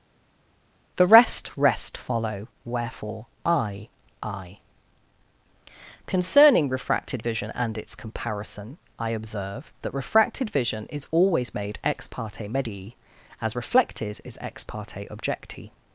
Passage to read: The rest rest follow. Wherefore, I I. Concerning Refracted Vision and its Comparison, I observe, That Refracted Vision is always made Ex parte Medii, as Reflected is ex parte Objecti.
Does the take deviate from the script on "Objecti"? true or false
false